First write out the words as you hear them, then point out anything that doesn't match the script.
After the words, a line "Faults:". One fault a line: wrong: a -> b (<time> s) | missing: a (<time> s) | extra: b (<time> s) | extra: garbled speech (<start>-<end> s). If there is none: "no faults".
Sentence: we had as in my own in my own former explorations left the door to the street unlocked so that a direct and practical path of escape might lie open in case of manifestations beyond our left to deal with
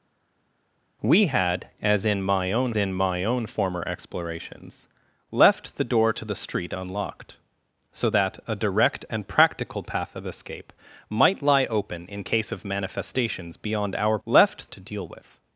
we had as in my own in my own former explorations left the door to the street unlocked so that a direct and practical path of escape might lie open in case of manifestations beyond our left to deal with
Faults:
no faults